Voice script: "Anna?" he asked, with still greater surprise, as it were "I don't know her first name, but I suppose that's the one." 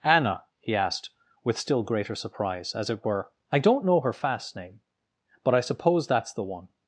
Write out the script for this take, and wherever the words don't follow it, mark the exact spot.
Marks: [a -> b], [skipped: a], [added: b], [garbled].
"Anna?" he asked, with still greater surprise, as it were "I don't know her [first -> fast] name, but I suppose that's the one."